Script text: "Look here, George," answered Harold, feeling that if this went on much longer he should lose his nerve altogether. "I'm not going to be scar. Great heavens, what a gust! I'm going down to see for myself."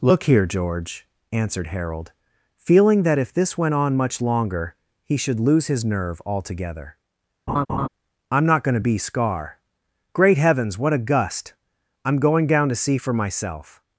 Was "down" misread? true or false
false